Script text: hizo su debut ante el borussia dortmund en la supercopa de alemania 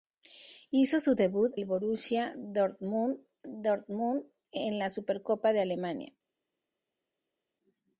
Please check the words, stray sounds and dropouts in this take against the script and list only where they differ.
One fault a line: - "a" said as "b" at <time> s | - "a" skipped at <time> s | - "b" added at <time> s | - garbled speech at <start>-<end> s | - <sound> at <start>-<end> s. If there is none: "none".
- "ante" skipped at 1.5 s
- "dortmund" added at 3.5 s